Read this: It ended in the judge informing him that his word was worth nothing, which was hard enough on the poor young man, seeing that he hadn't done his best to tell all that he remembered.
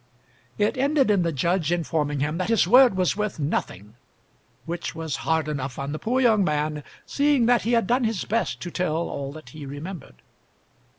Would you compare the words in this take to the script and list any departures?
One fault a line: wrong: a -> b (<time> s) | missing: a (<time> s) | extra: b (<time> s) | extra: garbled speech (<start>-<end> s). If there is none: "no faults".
wrong: hadn't -> had (7.7 s)